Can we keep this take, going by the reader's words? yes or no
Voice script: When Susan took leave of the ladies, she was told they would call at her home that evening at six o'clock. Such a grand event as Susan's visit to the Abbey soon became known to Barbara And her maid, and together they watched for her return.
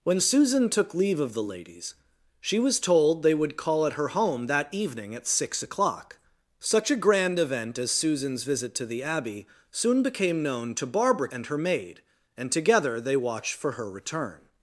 yes